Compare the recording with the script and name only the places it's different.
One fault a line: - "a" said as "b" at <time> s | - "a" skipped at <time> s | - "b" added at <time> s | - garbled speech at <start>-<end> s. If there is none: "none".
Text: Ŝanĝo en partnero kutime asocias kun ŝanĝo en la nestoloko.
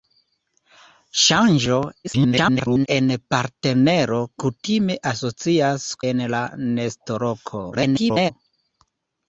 - garbled speech at 2.0-2.9 s
- "kun ŝanĝo" skipped at 5.9 s
- garbled speech at 7.7-8.3 s